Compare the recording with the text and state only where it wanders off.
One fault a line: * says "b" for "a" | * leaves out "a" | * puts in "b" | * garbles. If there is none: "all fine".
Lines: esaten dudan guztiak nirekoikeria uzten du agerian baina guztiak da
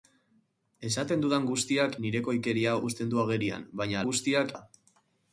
all fine